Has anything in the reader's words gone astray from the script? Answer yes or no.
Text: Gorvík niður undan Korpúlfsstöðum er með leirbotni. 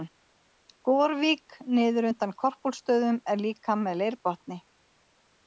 yes